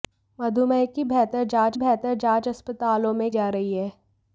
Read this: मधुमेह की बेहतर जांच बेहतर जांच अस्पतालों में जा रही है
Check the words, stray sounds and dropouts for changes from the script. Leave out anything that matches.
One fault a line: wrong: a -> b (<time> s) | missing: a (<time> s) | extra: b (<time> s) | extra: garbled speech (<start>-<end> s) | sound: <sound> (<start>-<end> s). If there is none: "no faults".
no faults